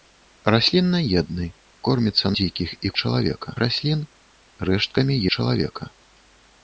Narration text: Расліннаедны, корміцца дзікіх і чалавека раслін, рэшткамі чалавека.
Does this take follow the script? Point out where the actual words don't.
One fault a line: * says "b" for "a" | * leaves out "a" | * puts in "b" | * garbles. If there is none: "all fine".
all fine